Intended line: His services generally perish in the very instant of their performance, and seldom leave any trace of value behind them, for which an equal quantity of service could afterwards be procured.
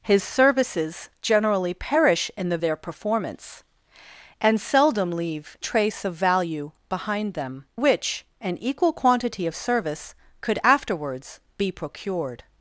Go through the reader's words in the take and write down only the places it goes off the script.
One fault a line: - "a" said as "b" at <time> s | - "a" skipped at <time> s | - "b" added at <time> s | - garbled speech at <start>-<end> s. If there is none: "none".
- "very instant of" skipped at 2.6 s
- "any" skipped at 5.6 s
- "for" skipped at 7.7 s